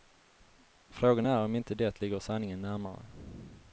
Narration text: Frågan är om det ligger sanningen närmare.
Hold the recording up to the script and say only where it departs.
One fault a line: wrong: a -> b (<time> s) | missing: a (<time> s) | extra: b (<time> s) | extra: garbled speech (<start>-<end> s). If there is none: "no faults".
extra: inte (1.6 s)